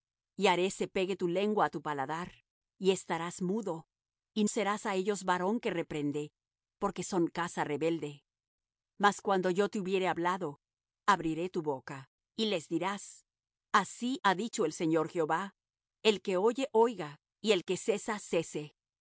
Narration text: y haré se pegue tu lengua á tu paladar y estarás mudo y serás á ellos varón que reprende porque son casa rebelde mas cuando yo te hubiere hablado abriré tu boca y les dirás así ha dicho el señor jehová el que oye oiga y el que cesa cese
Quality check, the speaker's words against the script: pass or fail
pass